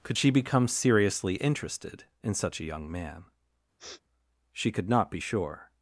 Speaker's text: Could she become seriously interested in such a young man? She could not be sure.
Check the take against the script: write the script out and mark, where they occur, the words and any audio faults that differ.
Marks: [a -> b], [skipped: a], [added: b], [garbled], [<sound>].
Could she become seriously interested in such a young man? [sniff] She could not be sure.